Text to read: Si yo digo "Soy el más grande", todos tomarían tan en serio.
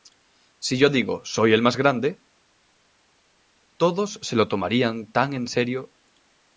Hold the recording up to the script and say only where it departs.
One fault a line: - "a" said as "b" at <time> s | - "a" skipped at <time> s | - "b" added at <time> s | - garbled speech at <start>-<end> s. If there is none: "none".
- "se lo" added at 4.2 s